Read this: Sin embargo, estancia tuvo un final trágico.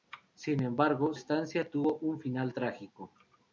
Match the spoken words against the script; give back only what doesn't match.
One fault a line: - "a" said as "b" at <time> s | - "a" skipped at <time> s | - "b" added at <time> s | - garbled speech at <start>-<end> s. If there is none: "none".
none